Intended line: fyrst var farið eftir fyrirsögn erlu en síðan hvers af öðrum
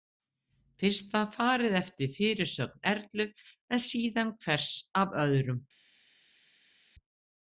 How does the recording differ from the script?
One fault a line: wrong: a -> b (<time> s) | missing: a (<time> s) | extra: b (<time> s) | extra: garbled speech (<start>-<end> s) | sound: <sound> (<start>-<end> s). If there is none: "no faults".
no faults